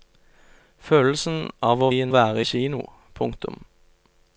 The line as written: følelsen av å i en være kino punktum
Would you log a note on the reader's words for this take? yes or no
no